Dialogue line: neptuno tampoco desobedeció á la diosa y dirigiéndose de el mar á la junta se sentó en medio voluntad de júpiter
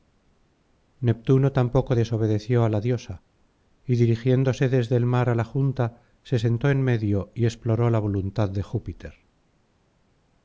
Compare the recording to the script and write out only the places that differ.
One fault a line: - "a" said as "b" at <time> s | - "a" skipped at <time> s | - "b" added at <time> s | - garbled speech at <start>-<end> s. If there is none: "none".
- "de" said as "desde" at 4.8 s
- "y exploró la" added at 7.3 s